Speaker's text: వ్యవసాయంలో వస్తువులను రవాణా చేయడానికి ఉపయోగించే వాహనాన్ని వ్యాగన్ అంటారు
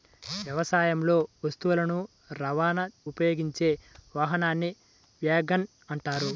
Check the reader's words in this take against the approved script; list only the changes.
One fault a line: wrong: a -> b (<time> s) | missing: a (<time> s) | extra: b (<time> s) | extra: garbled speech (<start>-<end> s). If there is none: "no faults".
missing: చేయడానికి (2.8 s)